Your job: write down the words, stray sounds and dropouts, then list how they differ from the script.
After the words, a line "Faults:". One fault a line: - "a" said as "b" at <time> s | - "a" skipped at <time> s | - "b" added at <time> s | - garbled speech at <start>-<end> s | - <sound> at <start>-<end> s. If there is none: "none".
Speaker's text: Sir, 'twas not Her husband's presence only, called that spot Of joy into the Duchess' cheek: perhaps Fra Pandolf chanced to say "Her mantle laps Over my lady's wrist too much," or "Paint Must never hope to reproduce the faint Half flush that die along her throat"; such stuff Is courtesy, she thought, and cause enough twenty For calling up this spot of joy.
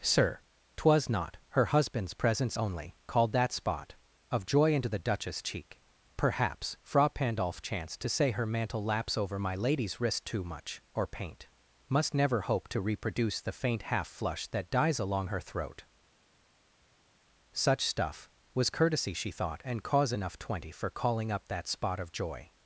Sir, 'twas not Her husband's presence only, called that spot Of joy into the Duchess' cheek: perhaps Fra Pandolf chanced to say "Her mantle laps Over my lady's wrist too much," or "Paint Must never hope to reproduce the faint Half flush that dies along her throat"; such stuff Was courtesy, she thought, and cause enough twenty For calling up that spot of joy.
Faults:
- "die" said as "dies" at 14.7 s
- "Is" said as "Was" at 18.5 s
- "this" said as "that" at 21.5 s